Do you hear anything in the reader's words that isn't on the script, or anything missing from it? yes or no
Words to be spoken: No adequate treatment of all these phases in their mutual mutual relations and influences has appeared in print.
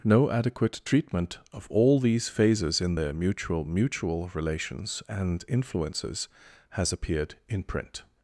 no